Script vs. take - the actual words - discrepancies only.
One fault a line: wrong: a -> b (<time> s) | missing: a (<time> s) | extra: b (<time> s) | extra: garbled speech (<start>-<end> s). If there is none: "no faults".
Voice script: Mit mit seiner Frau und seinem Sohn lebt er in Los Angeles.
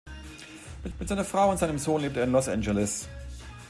no faults